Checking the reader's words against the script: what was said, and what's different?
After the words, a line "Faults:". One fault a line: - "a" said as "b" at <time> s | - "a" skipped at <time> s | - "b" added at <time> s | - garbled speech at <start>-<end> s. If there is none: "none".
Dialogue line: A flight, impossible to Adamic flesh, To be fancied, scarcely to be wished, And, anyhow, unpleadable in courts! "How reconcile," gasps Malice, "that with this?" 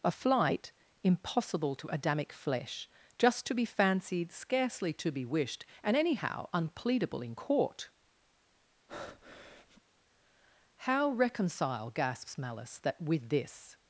A flight, impossible to Adamic flesh, Just to be fancied, scarcely to be wished, And, anyhow, unpleadable in court! "How reconcile," gasps Malice, "that with this?"
Faults:
- "Just" added at 3.2 s
- "courts" said as "court" at 7.3 s